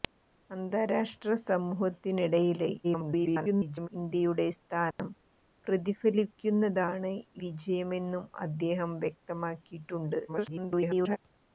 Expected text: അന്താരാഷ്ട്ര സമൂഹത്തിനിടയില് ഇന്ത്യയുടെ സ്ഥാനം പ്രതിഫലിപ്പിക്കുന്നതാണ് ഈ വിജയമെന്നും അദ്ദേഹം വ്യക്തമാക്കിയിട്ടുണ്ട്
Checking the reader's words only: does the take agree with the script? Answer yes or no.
no